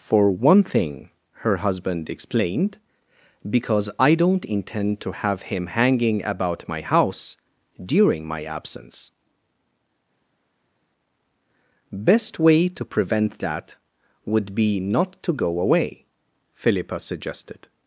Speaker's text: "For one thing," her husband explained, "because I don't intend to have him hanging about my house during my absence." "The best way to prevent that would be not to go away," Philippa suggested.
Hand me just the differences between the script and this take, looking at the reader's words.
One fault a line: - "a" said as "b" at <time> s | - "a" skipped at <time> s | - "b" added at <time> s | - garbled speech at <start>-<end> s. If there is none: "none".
- "The" skipped at 9.1 s